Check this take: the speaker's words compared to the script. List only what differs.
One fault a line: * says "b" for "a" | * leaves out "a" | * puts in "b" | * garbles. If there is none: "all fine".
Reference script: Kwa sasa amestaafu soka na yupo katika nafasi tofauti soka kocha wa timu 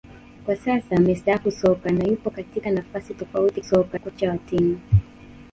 all fine